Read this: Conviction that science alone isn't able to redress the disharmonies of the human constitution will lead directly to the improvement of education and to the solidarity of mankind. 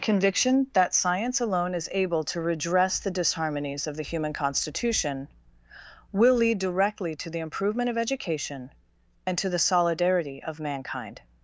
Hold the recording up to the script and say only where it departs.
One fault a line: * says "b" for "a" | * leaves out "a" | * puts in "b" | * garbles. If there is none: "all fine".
* says "is" for "isn't"